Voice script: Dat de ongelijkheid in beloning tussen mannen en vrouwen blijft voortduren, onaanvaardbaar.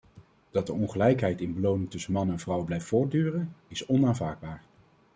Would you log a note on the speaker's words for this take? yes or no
yes